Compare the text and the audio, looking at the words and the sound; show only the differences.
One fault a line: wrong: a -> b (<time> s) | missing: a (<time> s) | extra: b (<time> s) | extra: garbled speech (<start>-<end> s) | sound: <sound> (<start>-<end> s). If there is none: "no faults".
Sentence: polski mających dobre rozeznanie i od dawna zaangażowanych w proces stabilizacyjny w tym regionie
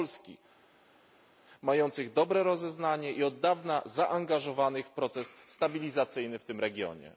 no faults